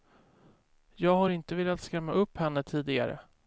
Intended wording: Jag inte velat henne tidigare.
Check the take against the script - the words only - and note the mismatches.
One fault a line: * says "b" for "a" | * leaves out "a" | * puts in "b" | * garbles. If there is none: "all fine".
* puts in "har"
* puts in "skrämma upp"